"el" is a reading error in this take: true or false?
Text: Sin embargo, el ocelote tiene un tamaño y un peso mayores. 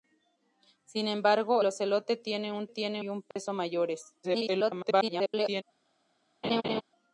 true